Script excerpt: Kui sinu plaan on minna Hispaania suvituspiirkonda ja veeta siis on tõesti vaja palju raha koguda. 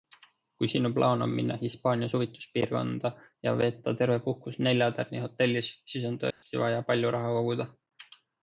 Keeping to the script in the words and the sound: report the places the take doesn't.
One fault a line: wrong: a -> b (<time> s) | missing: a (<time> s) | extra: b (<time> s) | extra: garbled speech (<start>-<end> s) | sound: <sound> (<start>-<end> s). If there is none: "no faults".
extra: terve puhkus neljatärnihotellis (4.0 s)
sound: dropout (6.3-6.4 s)